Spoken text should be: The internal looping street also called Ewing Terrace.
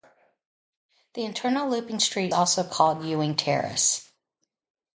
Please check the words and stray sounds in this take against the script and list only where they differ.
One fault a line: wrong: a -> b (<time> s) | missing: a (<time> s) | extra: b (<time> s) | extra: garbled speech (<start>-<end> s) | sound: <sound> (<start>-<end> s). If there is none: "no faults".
no faults